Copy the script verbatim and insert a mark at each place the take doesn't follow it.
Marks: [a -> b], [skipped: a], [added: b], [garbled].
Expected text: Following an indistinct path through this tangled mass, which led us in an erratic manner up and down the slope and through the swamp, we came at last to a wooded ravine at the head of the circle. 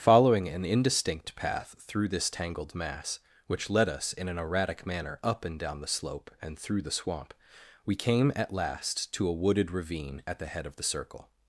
Following an indistinct path through this tangled mass, which led us in an erratic manner up and down the slope and through the swamp, we came at last to a wooded ravine at the head of the circle.